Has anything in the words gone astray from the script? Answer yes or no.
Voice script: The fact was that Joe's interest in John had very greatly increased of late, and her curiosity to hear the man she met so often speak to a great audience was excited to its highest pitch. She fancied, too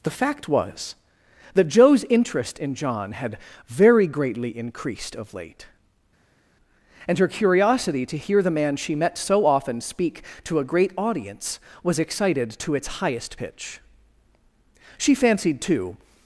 no